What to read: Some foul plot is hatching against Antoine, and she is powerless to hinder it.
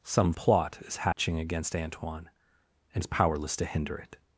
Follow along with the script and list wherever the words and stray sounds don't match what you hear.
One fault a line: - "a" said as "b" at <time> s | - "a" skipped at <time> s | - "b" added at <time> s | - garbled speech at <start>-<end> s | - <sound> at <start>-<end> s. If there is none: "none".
- "foul" skipped at 0.3 s
- dropout at 1.1-1.2 s
- "she" skipped at 3.0 s